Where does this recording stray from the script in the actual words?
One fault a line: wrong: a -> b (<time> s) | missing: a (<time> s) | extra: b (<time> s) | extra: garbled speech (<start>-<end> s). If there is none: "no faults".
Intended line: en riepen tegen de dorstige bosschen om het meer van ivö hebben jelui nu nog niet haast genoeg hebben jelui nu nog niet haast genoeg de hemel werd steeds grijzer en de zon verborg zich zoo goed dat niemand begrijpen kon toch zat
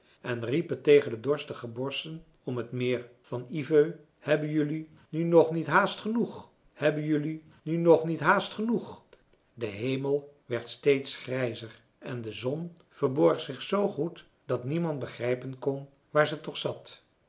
extra: waar ze (16.1 s)